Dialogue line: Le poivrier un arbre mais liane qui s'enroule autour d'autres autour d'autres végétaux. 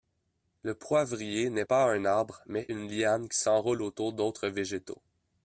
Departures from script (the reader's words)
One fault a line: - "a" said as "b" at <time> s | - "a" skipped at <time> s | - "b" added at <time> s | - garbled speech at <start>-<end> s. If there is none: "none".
- "n'est pas" added at 1.5 s
- "une" added at 2.7 s
- "autour d'autres" skipped at 4.5 s